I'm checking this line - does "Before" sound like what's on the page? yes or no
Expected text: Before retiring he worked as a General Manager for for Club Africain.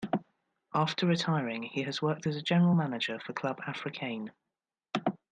no